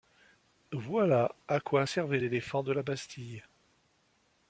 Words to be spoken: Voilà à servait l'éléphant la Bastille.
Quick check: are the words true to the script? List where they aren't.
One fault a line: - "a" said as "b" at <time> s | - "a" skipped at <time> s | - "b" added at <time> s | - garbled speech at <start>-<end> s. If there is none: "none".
- "quoi" added at 1.6 s
- "de" added at 2.6 s